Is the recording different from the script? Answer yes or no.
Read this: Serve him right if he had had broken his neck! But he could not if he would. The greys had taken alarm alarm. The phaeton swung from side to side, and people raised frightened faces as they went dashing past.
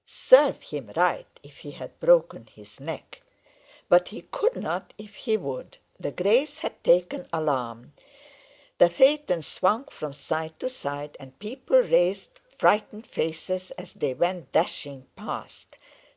yes